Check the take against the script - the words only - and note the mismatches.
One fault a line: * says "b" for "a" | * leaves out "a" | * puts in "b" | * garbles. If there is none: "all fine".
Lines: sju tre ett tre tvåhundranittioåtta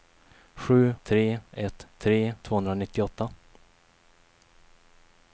all fine